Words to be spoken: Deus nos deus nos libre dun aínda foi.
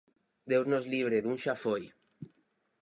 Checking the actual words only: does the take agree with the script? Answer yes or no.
no